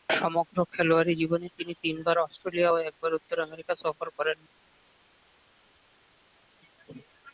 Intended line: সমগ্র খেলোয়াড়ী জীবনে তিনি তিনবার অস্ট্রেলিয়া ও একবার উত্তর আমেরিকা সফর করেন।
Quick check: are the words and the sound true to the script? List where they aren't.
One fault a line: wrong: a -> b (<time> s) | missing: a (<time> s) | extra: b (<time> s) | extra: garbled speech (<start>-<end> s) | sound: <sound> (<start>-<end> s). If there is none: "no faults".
no faults